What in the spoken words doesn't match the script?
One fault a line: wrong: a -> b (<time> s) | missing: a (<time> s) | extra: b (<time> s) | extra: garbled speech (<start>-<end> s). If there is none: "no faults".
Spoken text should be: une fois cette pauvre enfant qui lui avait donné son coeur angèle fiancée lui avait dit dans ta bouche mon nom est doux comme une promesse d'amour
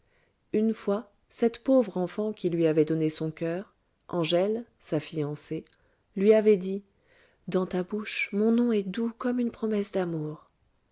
extra: sa (4.8 s)